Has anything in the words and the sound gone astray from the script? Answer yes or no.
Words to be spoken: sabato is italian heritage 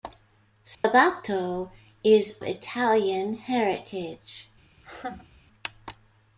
yes